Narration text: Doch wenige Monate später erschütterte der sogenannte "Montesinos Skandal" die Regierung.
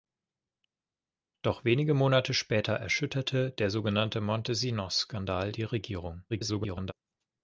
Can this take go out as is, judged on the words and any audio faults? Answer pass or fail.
fail